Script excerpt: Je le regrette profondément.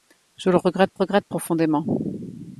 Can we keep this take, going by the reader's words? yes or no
no